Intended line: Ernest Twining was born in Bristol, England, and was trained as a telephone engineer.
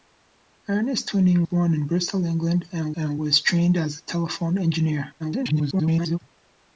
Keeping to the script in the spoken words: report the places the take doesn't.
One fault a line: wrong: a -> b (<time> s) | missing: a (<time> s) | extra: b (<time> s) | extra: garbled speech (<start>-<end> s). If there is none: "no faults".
missing: was (1.4 s)
extra: and (2.9 s)
extra: garbled speech (5.2-6.2 s)